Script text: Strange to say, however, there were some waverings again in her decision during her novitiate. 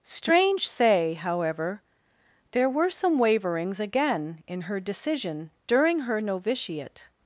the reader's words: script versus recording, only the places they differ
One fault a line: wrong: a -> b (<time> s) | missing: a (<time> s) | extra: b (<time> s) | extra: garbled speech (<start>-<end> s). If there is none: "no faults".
missing: to (0.7 s)